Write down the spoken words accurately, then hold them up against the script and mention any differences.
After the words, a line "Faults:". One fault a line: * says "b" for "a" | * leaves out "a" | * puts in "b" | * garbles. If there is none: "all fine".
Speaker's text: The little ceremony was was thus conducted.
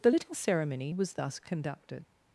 The little ceremony was thus conducted.
Faults:
* leaves out "was"